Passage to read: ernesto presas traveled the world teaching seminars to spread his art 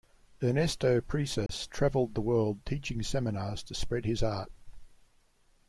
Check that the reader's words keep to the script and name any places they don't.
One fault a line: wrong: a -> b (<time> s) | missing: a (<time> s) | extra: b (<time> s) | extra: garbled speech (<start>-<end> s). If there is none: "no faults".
no faults